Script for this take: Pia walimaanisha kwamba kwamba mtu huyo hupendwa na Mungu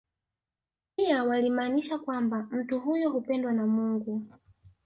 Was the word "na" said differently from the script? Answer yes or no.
no